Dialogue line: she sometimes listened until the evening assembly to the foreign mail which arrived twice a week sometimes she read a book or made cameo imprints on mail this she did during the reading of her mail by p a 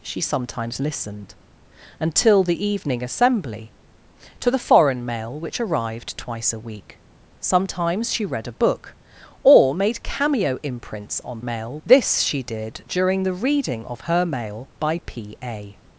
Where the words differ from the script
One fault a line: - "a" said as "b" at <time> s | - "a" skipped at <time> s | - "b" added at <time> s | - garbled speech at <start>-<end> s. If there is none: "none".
none